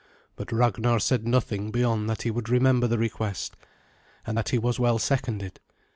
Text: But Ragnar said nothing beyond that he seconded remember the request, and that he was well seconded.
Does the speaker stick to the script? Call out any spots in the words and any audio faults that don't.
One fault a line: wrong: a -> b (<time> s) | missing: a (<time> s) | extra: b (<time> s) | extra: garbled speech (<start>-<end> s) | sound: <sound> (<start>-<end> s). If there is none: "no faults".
wrong: seconded -> would (2.3 s)